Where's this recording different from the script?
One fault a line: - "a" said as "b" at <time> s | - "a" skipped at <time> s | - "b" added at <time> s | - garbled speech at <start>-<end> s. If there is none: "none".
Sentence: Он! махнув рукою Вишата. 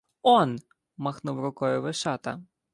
none